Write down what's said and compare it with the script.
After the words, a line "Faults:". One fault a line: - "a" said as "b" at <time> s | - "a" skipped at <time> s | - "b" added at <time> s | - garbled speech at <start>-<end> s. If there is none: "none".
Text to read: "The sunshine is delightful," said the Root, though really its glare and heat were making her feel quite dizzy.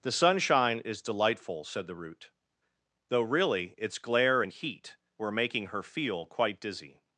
"The sunshine is delightful," said the Root, though really its glare and heat were making her feel quite dizzy.
Faults:
none